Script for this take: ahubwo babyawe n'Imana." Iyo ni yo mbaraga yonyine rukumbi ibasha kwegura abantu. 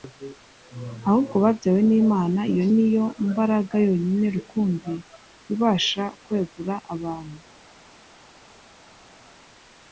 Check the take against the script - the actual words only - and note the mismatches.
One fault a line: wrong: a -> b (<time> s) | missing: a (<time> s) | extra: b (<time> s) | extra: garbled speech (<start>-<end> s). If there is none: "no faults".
no faults